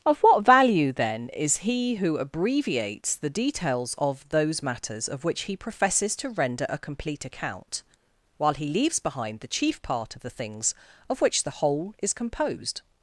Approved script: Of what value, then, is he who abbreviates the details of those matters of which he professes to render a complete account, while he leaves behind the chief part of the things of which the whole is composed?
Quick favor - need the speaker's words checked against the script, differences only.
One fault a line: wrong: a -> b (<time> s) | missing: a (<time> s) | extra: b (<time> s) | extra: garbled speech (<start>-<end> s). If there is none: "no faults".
no faults